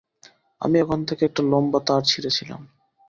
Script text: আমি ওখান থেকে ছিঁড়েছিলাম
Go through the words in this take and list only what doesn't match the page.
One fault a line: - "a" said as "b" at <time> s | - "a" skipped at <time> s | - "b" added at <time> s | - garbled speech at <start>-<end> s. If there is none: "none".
- "একটা লম্বা তার" added at 1.2 s